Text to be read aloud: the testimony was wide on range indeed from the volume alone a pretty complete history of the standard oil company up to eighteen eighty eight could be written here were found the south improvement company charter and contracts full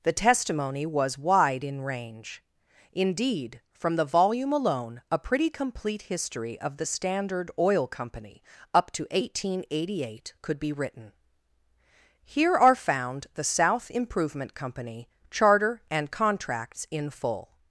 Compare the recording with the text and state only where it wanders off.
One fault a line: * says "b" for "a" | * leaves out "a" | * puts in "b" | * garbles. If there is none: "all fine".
* says "in" for "on"
* says "are" for "were"
* puts in "in"